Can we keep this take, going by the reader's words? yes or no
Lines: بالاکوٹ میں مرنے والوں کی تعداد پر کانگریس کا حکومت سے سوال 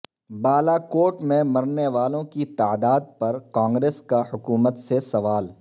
yes